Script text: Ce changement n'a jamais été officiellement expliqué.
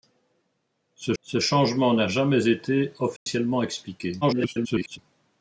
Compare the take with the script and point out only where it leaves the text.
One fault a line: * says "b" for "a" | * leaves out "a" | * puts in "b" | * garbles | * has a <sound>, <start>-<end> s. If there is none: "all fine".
* puts in "ce"
* has a dropout, 3.2-3.3 s
* garbles